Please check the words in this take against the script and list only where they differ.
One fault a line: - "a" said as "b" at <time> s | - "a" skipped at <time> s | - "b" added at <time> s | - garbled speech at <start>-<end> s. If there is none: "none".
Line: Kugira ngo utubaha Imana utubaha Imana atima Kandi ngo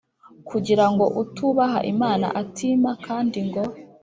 - "utubaha Imana" skipped at 2.3 s